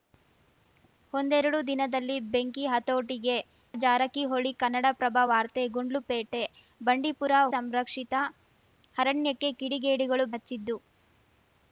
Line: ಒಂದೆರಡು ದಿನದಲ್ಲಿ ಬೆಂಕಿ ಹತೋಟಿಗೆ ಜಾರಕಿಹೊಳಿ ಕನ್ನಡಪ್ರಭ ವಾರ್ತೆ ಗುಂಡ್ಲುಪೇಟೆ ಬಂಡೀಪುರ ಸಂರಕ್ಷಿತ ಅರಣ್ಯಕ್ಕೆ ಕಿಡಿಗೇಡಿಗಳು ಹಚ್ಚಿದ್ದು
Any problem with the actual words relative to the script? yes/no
no